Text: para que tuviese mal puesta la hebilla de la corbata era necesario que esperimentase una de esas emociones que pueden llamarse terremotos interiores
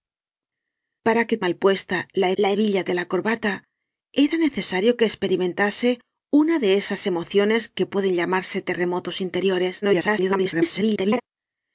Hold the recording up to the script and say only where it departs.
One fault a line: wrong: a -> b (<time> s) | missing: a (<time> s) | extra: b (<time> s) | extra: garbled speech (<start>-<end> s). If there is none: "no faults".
missing: tuviese (1.4 s)
extra: la (2.4 s)
extra: garbled speech (9.8-11.2 s)